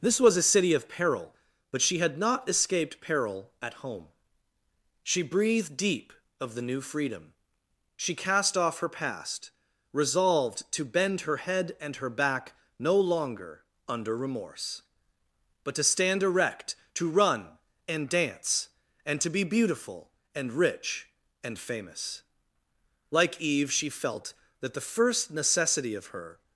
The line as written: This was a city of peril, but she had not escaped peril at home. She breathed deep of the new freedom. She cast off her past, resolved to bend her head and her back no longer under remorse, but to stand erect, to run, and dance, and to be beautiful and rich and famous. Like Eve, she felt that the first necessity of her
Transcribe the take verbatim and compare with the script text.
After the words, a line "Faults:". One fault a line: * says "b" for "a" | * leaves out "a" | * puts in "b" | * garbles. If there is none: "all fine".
This was a city of peril, but she had not escaped peril at home. She breathed deep of the new freedom. She cast off her past, resolved to bend her head and her back no longer under remorse, but to stand erect, to run, and dance, and to be beautiful and rich and famous. Like Eve, she felt that the first necessity of her
Faults:
all fine